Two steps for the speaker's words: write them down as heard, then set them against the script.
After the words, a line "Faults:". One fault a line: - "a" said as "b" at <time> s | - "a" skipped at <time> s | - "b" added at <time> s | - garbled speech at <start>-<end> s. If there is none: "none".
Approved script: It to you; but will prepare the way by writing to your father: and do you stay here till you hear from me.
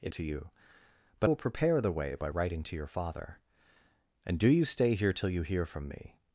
It to you; but will prepare the way by writing to your father: and do you stay here till you hear from me.
Faults:
none